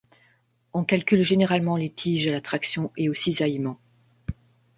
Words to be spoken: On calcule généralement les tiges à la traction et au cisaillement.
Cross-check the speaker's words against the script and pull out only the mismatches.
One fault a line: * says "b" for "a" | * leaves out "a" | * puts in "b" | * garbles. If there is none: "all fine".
all fine